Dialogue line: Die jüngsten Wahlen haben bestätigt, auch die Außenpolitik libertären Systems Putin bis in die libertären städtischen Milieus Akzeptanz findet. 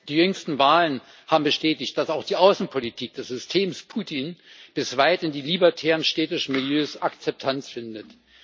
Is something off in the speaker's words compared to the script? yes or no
yes